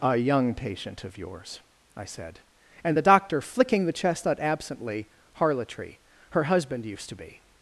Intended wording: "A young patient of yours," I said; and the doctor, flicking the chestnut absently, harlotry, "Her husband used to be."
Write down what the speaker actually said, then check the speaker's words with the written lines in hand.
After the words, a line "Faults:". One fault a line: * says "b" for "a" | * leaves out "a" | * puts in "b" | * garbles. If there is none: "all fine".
"A young patient of yours," I said; and the doctor, flicking the chestnut absently, harlotry, "Her husband used to be."
Faults:
all fine